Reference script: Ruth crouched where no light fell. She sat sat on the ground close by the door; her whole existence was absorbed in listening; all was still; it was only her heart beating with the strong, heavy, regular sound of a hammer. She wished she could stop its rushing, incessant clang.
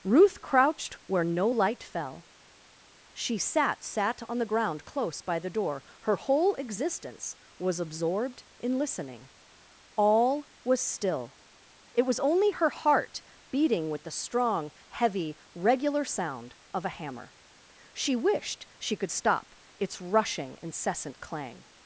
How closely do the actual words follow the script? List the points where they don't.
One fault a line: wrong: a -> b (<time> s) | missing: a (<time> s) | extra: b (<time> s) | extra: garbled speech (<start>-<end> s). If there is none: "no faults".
no faults